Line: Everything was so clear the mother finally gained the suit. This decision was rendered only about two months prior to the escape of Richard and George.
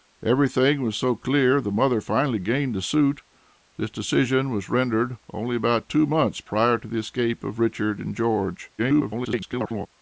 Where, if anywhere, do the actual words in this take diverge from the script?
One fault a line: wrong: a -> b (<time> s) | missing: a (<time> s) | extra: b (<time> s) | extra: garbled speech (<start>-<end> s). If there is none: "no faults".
extra: garbled speech (8.8-9.9 s)